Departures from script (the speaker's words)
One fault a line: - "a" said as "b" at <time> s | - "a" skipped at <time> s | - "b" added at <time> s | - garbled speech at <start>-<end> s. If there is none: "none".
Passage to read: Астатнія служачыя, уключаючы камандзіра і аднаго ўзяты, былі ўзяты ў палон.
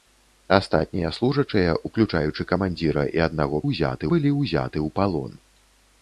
none